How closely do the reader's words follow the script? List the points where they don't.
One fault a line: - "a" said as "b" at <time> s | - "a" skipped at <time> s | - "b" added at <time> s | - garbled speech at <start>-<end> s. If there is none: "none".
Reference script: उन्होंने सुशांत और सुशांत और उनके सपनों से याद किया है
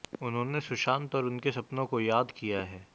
- "सुशांत और" skipped at 1.2 s
- "से" said as "को" at 1.8 s